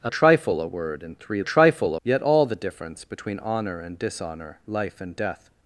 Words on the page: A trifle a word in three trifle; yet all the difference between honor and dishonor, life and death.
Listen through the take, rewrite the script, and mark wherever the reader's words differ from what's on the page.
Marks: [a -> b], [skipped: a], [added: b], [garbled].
A trifle a word in three trifle; yet all the difference between honor and dishonor, life and death.